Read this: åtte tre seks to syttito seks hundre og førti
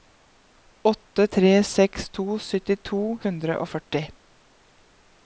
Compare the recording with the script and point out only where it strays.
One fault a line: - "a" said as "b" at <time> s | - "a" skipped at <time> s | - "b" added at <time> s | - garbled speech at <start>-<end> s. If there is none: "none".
- "seks" skipped at 3.0 s